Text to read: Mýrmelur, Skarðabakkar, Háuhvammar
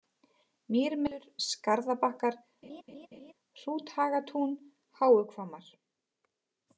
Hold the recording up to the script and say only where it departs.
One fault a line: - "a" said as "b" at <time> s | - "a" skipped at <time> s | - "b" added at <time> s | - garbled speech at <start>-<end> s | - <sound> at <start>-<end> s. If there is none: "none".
- laugh at 2.6-3.3 s
- "Hrúthagatún" added at 3.6 s